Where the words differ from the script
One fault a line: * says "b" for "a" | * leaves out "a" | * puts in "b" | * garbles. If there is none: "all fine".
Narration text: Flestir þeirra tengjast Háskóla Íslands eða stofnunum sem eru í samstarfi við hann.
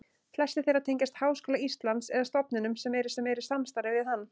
* puts in "sem eru"